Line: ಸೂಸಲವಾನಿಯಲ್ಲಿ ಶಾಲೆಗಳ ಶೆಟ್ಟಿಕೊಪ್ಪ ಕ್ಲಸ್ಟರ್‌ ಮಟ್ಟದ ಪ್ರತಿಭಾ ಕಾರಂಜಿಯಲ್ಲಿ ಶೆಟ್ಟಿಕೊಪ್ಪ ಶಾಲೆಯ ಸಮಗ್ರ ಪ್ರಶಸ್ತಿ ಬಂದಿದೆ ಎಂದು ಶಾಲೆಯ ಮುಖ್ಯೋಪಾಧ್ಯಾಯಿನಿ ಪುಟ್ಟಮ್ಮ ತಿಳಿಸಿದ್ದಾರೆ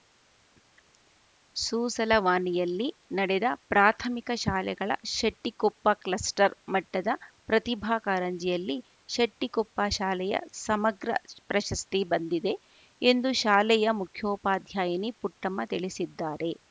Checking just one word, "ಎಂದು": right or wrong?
right